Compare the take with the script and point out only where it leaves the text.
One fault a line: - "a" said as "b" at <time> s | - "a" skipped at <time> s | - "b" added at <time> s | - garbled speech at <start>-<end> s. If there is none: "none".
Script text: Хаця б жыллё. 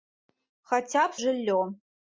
none